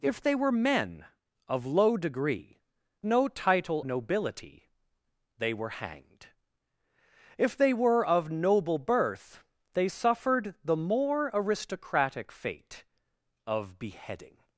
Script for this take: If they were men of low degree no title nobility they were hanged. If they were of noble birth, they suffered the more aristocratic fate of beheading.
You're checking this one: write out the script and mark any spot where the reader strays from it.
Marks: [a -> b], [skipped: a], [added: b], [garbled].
If they were men of low degree no title nobility they were hanged. If they were of noble birth, they suffered the more aristocratic fate of beheading.